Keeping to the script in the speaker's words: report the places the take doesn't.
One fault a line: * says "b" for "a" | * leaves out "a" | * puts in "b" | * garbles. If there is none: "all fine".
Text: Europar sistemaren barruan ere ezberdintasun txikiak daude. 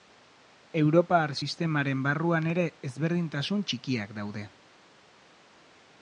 all fine